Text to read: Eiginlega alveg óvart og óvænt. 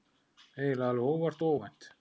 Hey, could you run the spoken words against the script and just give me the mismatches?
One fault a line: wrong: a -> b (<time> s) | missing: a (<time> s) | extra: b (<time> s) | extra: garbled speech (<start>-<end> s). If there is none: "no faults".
no faults